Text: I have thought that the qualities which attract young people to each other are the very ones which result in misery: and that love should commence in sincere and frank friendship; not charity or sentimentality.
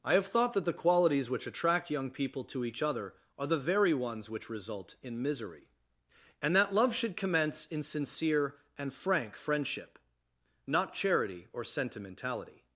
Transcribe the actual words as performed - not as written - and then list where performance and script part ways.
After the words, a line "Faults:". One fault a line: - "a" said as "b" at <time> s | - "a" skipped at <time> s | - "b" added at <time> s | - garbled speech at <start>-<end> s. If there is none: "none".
I have thought that the qualities which attract young people to each other are the very ones which result in misery: and that love should commence in sincere and frank friendship; not charity or sentimentality.
Faults:
none